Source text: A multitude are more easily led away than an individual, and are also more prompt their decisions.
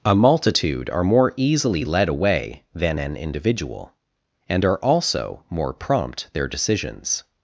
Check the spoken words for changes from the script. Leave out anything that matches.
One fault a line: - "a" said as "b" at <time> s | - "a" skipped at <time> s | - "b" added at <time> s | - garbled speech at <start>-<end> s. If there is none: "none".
none